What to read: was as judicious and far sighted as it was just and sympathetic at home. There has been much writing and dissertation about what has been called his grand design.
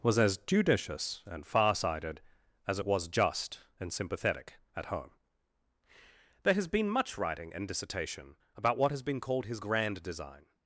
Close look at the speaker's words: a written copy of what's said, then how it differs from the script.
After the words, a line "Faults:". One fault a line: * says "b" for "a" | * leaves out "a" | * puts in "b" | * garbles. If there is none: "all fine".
was as judicious and far sighted as it was just and sympathetic at home. There has been much writing and dissertation about what has been called his grand design.
Faults:
all fine